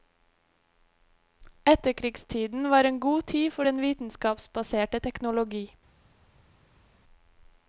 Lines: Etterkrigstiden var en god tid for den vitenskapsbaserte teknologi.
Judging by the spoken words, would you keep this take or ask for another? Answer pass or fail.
pass